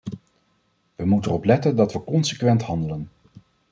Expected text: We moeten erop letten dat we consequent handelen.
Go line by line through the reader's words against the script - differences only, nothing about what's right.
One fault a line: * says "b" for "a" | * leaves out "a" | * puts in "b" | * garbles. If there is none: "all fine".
all fine